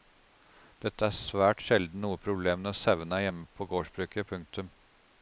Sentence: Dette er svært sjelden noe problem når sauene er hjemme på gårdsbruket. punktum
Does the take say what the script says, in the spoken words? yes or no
yes